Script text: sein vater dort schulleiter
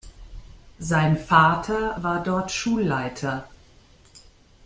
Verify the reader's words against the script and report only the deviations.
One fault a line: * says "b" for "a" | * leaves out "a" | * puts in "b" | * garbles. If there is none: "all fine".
* puts in "war"